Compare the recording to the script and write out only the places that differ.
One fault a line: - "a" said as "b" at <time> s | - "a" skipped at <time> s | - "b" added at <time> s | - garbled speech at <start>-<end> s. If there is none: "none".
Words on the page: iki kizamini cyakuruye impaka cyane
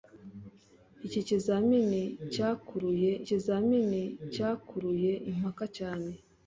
- "kizamini cyakuruye" added at 3.3 s